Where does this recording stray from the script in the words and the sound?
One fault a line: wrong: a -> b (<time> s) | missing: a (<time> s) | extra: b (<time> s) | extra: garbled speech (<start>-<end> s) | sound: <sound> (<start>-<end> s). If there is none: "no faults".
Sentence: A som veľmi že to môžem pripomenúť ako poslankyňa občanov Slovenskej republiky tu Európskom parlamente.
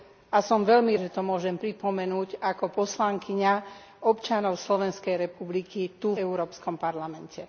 no faults